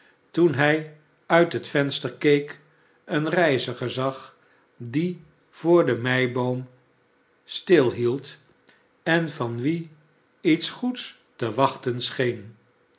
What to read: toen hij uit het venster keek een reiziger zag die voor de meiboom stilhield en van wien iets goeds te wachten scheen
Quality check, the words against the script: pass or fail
pass